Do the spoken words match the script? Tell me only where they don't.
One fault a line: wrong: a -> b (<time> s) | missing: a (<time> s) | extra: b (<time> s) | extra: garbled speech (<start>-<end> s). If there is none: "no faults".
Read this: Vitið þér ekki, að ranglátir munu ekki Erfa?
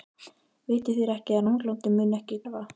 no faults